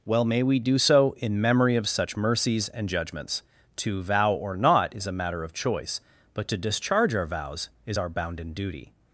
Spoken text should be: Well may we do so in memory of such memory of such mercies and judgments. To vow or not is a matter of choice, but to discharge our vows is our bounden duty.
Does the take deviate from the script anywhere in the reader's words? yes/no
yes